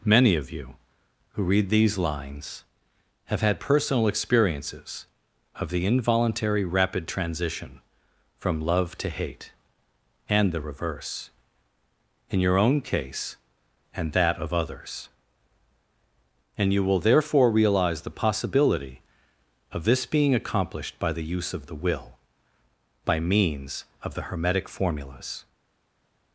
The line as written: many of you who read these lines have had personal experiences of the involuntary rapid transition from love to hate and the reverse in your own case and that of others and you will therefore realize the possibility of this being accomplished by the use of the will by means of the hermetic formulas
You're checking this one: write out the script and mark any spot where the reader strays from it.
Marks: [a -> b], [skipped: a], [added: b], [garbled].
many of you who read these lines have had personal experiences of the involuntary rapid transition from love to hate and the reverse in your own case and that of others and you will therefore realize the possibility of this being accomplished by the use of the will by means of the hermetic formulas